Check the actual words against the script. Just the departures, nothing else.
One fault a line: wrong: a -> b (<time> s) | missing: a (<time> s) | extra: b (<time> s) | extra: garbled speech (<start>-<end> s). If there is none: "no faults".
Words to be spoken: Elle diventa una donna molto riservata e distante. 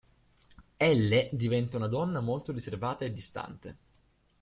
no faults